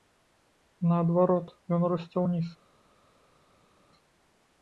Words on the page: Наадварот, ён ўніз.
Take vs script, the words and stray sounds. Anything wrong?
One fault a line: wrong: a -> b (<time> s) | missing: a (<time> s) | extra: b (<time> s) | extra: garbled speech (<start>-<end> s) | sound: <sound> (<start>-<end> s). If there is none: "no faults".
extra: расце (1.9 s)